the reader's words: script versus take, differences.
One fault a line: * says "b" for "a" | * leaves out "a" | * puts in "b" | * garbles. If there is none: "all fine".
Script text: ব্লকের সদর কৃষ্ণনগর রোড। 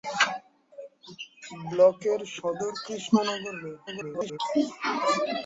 * garbles